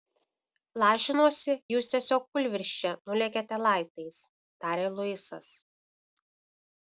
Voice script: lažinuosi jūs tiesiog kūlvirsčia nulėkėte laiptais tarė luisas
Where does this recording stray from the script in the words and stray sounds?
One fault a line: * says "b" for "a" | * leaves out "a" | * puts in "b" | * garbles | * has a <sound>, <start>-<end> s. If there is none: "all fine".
all fine